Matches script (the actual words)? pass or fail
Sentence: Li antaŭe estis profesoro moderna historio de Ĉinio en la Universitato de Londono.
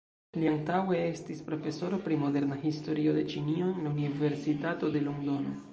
fail